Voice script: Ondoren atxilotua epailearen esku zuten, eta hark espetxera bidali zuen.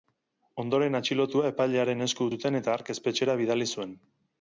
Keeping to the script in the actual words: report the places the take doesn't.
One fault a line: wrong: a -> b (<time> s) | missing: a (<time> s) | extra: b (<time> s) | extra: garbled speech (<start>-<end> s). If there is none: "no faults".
no faults